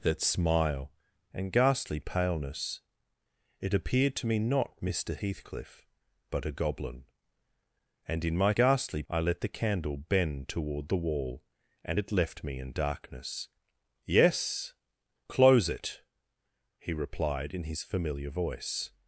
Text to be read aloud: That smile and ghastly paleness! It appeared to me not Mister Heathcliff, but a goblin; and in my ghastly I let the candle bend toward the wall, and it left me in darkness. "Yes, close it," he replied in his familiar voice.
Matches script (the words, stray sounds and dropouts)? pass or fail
pass